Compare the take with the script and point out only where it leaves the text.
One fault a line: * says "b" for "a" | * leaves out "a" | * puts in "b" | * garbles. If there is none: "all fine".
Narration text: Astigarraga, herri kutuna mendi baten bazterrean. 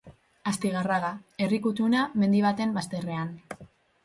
all fine